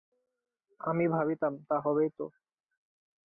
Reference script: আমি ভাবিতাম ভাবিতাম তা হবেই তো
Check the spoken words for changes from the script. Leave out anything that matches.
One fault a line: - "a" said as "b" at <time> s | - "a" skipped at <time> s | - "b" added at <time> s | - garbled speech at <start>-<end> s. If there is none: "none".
- "ভাবিতাম" skipped at 1.5 s